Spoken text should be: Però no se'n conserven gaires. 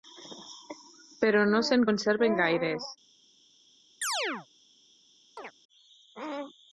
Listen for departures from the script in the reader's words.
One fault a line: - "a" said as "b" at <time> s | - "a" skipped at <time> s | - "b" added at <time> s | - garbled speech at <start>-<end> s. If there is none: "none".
none